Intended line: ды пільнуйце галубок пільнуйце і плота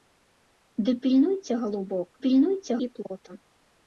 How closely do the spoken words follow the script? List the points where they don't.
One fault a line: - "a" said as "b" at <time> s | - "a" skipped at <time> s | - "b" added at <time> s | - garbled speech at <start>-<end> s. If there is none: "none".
none